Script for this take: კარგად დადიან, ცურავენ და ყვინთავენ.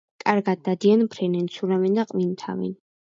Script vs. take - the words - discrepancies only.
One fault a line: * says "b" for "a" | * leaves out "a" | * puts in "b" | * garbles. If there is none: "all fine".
* puts in "ფრენენ"